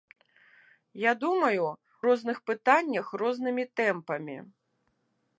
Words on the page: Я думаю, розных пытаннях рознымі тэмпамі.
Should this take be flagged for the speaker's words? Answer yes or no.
no